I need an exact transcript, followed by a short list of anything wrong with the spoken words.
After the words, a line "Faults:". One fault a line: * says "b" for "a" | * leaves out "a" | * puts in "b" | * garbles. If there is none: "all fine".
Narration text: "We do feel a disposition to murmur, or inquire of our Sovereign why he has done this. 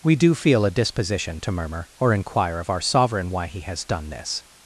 "We do feel a disposition to murmur, or inquire of our Sovereign why he has done this.
Faults:
all fine